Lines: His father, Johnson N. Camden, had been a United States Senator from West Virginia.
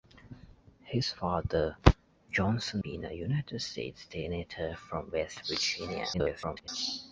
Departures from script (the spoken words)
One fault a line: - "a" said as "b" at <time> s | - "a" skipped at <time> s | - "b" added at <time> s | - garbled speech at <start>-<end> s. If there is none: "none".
- "N Camden had" skipped at 2.8 s
- garbled speech at 6.1-6.7 s